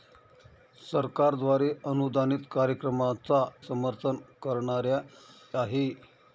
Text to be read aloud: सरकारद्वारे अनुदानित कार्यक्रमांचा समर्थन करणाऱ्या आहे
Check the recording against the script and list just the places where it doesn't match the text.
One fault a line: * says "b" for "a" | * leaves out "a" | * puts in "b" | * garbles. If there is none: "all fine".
all fine